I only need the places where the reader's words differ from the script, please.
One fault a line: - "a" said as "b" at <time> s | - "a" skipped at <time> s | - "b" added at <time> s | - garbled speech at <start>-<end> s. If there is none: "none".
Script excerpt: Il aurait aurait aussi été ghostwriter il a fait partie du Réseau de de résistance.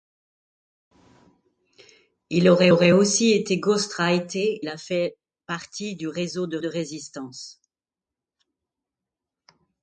none